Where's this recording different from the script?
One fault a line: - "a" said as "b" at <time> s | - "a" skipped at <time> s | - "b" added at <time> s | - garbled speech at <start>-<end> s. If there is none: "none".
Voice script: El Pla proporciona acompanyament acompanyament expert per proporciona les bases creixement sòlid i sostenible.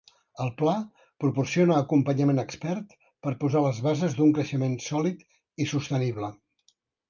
- "acompanyament" skipped at 2.4 s
- "proporciona" said as "posar" at 3.5 s
- "d'un" added at 4.2 s